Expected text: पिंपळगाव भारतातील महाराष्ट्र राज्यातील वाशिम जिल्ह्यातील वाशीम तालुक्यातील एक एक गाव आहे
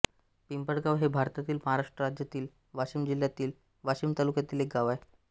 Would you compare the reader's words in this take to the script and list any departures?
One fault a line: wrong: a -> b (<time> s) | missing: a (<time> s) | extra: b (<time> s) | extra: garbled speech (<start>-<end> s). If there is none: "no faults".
extra: हे (1.0 s)
missing: एक (4.7 s)